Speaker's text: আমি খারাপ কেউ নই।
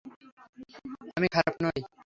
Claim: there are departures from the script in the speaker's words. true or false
true